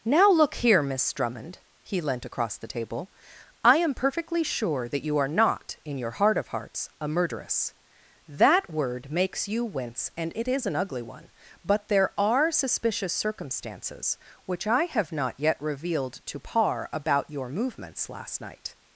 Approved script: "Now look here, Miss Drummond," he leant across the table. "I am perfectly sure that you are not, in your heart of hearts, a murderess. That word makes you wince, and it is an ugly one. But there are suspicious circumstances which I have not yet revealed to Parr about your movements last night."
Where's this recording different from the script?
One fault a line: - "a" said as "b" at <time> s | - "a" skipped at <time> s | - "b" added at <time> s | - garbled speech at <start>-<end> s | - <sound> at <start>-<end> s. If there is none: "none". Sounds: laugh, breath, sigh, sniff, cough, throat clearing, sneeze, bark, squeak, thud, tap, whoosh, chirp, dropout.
none